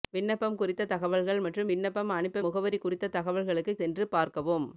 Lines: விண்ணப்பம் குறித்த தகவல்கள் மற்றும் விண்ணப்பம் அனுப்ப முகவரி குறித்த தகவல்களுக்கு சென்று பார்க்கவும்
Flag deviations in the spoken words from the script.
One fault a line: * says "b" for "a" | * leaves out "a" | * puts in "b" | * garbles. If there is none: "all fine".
all fine